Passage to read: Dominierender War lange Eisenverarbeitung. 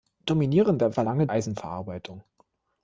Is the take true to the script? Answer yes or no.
yes